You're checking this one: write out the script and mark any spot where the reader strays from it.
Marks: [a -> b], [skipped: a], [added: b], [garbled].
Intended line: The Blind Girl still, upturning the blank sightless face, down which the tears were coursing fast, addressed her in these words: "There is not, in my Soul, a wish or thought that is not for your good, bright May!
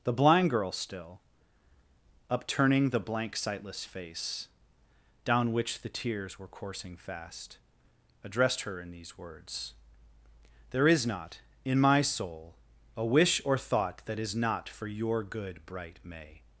The Blind Girl still, upturning the blank sightless face, down which the tears were coursing fast, addressed her in these words: "There is not, in my Soul, a wish or thought that is not for your good, bright May!